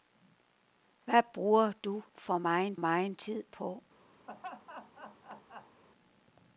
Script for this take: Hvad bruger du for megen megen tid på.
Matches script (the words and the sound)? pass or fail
fail